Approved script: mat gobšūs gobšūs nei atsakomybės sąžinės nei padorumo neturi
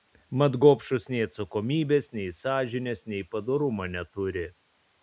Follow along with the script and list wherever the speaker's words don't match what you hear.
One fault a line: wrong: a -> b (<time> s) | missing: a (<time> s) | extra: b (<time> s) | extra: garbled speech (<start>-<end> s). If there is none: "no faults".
missing: gobšūs (1.1 s)
extra: nei (2.2 s)